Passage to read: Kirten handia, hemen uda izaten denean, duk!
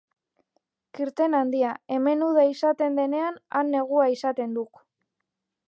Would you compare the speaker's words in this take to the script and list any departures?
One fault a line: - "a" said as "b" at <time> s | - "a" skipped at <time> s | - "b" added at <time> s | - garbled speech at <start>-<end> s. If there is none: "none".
- "han negua izaten" added at 3.6 s